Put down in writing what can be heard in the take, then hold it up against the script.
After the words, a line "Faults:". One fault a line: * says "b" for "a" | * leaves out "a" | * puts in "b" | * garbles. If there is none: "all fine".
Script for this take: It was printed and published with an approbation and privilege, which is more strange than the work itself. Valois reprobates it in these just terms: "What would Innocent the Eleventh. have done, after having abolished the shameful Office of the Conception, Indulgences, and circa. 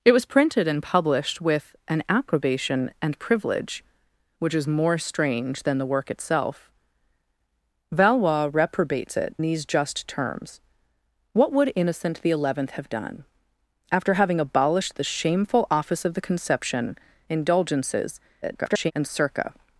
It was printed and published with an approbation and privilege, which is more strange than the work itself. Valois reprobates it these just terms: "What would Innocent the Eleventh. have done, after having abolished the shameful Office of the Conception, Indulgences, [garbled] and circa.
Faults:
* leaves out "in"
* garbles